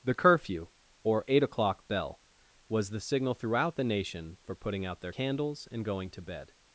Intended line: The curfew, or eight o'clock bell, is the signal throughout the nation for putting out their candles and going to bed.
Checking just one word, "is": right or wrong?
wrong